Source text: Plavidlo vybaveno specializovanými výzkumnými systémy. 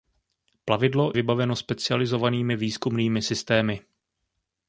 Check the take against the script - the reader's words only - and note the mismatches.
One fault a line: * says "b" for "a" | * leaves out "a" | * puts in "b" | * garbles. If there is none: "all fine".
all fine